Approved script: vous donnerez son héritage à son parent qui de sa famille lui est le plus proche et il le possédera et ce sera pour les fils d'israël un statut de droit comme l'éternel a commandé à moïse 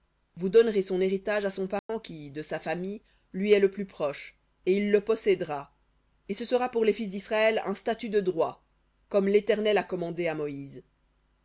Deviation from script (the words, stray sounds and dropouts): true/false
true